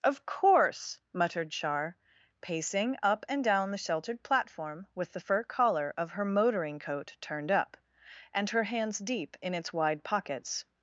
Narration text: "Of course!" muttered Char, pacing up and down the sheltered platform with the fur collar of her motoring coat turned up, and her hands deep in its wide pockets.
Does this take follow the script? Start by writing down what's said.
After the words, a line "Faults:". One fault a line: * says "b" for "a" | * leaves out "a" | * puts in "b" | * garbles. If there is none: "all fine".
"Of course!" muttered Char, pacing up and down the sheltered platform with the fur collar of her motoring coat turned up, and her hands deep in its wide pockets.
Faults:
all fine